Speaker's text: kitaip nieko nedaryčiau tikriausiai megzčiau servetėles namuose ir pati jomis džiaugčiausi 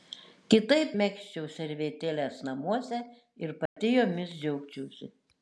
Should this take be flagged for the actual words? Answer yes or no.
yes